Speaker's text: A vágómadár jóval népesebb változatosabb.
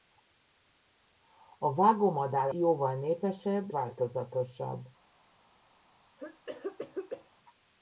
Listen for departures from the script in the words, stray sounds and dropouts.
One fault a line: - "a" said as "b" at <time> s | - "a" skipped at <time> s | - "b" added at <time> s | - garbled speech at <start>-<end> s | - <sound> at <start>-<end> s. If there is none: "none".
- cough at 6.2-7.3 s